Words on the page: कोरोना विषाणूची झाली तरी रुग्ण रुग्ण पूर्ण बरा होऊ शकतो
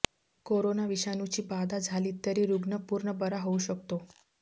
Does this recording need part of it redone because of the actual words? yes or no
yes